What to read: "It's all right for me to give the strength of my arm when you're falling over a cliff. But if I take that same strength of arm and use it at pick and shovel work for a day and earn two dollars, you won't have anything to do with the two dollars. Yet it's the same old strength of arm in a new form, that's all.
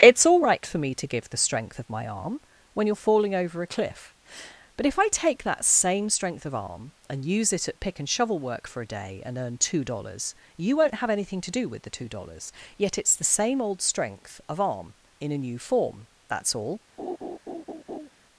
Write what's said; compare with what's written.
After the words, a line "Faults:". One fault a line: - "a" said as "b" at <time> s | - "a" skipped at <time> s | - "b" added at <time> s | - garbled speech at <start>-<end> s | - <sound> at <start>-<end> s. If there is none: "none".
"It's all right for me to give the strength of my arm when you're falling over a cliff. But if I take that same strength of arm and use it at pick and shovel work for a day and earn two dollars, you won't have anything to do with the two dollars. Yet it's the same old strength of arm in a new form, that's all.
Faults:
- laugh at 17.0-18.1 s